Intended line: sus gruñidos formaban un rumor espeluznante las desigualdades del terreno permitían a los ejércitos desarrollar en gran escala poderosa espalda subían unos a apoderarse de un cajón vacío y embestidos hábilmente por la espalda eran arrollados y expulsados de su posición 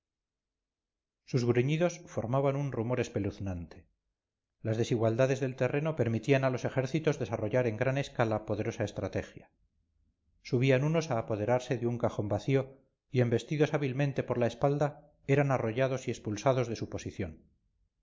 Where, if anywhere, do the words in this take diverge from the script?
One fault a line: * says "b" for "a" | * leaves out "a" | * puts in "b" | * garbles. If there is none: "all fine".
* says "estrategia" for "espalda"